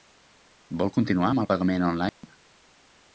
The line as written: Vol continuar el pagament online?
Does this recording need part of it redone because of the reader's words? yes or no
yes